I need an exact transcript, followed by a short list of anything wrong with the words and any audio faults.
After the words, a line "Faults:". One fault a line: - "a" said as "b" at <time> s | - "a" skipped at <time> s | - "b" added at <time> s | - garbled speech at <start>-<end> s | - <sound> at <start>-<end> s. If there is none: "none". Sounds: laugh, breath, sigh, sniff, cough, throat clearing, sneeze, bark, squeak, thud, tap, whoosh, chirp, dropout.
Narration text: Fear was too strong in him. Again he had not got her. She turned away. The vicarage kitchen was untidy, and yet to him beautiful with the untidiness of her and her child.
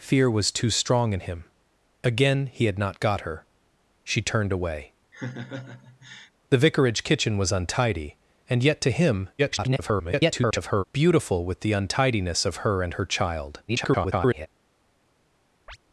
Fear was too strong in him. Again he had not got her. She turned away. The vicarage kitchen was untidy, and yet to him [garbled] beautiful with the untidiness of her and her child. [garbled]
Faults:
- laugh at 5.1-6.3 s
- garbled speech at 9.4-10.8 s
- garbled speech at 13.7-14.5 s
- chirp at 15.7-15.8 s